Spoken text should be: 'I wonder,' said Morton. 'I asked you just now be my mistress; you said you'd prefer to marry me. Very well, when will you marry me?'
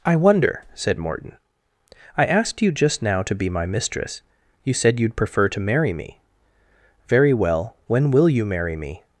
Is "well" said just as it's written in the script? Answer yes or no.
yes